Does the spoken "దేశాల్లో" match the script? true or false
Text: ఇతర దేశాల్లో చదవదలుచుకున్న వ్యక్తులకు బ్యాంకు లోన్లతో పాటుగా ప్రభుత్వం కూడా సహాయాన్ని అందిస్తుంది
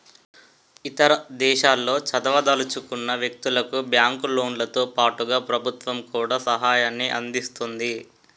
true